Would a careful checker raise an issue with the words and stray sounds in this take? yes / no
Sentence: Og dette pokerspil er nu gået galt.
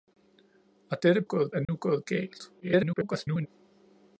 yes